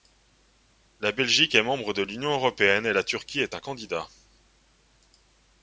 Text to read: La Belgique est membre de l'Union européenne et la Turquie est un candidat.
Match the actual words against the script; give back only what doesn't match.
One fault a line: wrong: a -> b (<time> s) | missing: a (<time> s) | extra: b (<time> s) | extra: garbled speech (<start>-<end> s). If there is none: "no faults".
no faults